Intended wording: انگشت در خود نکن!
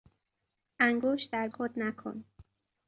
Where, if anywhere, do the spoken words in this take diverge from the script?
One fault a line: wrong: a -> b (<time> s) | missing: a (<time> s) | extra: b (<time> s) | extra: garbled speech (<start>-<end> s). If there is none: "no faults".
no faults